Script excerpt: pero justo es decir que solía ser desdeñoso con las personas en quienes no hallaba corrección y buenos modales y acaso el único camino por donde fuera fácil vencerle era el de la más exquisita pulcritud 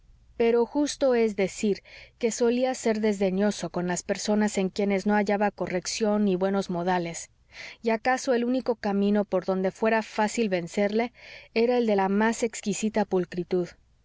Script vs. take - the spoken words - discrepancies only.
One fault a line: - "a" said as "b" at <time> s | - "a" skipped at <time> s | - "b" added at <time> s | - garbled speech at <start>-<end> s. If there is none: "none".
none